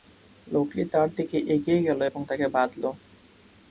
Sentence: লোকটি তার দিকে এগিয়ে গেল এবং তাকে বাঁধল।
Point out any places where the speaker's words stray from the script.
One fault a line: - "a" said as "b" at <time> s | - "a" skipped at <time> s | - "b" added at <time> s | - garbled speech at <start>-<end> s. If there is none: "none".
none